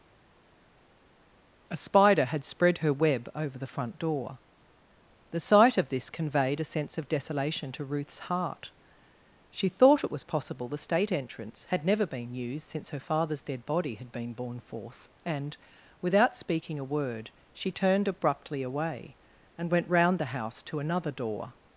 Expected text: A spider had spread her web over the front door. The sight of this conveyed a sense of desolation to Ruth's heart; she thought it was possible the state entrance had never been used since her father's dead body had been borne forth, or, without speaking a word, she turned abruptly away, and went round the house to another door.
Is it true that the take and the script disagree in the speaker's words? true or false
true